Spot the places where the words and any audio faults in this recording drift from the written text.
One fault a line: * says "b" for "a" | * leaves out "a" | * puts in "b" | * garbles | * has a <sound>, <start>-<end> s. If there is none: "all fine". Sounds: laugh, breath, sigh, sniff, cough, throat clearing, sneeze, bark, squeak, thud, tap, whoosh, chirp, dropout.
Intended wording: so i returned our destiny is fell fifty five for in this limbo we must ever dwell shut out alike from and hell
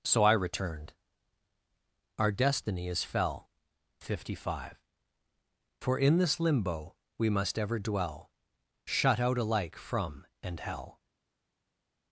all fine